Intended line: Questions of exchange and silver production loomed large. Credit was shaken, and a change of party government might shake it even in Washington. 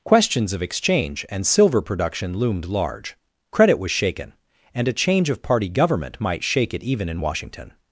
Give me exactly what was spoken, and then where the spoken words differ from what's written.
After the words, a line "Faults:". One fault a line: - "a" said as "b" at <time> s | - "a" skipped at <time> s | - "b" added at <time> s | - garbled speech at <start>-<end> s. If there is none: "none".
Questions of exchange and silver production loomed large. Credit was shaken, and a change of party government might shake it even in Washington.
Faults:
none